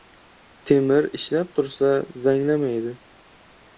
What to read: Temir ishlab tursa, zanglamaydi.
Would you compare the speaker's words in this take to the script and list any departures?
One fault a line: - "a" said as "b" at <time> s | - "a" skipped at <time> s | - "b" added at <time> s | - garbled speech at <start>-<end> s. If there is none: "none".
none